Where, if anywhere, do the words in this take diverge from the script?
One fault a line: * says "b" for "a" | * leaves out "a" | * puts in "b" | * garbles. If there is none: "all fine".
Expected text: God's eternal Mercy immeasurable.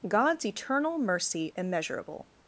all fine